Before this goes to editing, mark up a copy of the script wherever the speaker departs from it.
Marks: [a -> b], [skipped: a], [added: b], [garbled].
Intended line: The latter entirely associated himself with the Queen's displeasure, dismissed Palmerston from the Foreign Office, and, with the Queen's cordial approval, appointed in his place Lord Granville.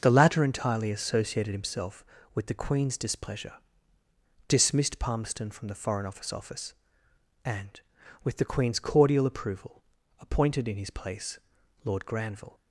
The latter entirely associated himself with the Queen's displeasure, dismissed Palmerston from the Foreign Office, [added: Office] and, with the Queen's cordial approval, appointed in his place Lord Granville.